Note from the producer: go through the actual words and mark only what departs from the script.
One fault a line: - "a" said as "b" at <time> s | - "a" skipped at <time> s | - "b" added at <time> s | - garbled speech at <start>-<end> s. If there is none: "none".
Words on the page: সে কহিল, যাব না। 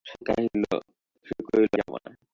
none